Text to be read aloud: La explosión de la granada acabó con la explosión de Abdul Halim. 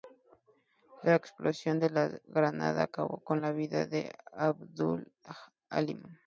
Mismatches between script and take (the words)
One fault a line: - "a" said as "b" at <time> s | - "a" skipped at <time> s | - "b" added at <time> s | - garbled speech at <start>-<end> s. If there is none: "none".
- "explosión" said as "vida" at 3.5 s